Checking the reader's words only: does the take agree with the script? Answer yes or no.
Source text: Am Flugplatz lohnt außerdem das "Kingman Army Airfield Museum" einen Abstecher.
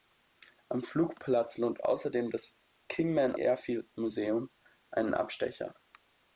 no